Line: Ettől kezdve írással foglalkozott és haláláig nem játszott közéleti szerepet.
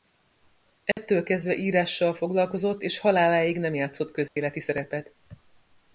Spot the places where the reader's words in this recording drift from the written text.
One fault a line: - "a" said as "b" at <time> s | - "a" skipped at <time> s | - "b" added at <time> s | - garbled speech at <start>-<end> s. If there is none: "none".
none